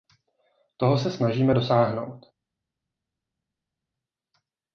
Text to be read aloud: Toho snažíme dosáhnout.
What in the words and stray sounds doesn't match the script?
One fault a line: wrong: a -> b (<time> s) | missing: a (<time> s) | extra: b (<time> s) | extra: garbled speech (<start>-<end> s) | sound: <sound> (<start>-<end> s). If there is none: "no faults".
extra: se (1.0 s)